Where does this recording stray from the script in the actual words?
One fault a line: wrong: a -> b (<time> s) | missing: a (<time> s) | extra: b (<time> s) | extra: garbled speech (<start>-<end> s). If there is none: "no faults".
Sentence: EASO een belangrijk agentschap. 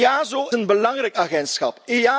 no faults